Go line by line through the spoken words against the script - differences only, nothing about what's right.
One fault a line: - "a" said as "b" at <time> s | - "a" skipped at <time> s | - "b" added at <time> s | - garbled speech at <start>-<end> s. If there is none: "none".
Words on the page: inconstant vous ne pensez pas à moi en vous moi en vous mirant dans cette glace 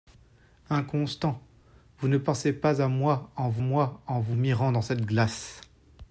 none